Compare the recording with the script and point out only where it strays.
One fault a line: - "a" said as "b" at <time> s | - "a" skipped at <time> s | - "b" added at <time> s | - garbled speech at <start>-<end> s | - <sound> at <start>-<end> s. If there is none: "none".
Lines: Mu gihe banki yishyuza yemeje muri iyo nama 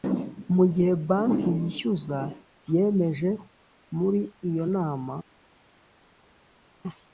none